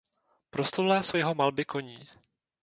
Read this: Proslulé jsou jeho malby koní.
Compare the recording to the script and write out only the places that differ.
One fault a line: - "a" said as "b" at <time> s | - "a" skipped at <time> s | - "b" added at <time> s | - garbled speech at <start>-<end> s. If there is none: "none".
none